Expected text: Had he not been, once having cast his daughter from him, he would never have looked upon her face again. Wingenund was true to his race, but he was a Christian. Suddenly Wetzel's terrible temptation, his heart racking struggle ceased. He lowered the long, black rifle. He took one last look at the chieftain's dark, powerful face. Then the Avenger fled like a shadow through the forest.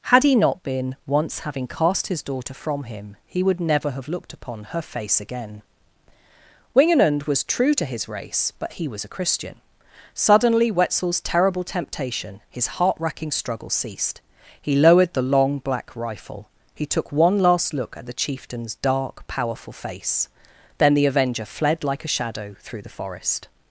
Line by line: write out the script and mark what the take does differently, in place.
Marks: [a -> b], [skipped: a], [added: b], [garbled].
Had he not been, once having cast his daughter from him, he would never have looked upon her face again. Wingenund was true to his race, but he was a Christian. Suddenly Wetzel's terrible temptation, his heart racking struggle ceased. He lowered the long, black rifle. He took one last look at the chieftain's dark, powerful face. Then the Avenger fled like a shadow through the forest.